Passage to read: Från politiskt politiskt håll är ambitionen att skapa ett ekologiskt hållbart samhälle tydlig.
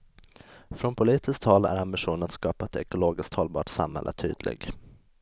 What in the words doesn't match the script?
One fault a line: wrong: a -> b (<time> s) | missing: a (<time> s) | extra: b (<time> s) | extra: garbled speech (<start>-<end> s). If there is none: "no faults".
missing: politiskt (1.4 s)